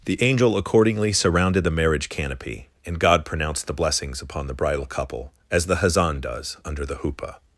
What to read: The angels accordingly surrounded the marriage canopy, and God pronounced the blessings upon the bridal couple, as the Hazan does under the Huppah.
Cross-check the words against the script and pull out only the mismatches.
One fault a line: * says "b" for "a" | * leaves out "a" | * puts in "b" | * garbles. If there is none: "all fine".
* says "angel" for "angels"